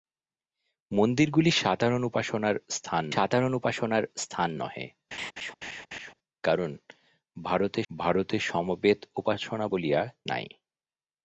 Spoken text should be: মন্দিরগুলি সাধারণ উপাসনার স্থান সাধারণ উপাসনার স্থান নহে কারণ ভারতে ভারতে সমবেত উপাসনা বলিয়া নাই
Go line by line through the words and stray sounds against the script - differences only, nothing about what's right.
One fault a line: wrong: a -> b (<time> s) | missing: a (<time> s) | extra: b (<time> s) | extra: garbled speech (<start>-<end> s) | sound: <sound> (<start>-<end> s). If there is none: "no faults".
sound: laugh (5.1-6.1 s)